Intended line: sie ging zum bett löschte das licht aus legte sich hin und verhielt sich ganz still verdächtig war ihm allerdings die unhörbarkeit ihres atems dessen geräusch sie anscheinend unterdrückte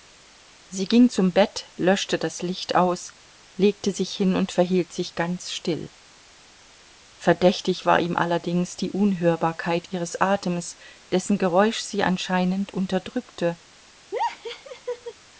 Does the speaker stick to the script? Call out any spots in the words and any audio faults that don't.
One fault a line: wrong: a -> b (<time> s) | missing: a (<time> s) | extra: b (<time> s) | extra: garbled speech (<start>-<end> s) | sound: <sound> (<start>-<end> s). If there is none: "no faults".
sound: laugh (14.1-15.1 s)